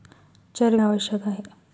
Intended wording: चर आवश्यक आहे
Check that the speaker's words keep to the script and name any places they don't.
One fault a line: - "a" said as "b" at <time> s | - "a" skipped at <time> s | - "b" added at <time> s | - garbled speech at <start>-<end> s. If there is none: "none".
none